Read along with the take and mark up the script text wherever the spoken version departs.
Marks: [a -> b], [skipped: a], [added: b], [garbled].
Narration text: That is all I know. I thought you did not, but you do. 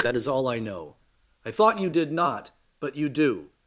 That is all I know. I thought you did not, but you do.